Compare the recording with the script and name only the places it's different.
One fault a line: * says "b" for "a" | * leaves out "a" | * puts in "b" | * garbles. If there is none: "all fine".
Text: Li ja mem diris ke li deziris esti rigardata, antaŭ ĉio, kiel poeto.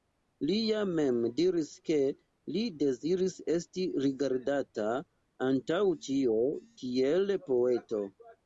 all fine